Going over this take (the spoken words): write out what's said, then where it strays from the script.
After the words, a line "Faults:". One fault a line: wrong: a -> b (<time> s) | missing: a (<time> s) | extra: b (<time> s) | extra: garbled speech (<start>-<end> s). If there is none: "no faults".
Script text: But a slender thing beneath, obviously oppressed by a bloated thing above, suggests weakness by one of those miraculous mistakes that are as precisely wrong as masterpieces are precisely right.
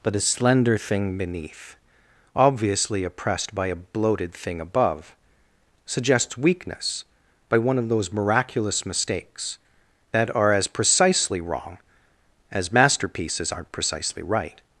But a slender thing beneath, obviously oppressed by a bloated thing above, suggests weakness by one of those miraculous mistakes that are as precisely wrong as masterpieces aren't precisely right.
Faults:
wrong: are -> aren't (13.5 s)